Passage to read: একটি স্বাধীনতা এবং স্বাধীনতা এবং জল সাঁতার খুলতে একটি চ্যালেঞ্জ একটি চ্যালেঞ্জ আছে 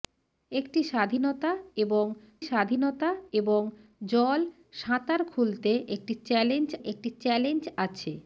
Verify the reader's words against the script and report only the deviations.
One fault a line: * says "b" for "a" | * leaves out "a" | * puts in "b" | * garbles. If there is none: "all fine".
all fine